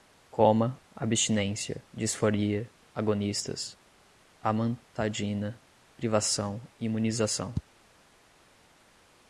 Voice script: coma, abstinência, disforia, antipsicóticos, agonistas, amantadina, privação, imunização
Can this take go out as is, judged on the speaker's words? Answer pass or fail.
fail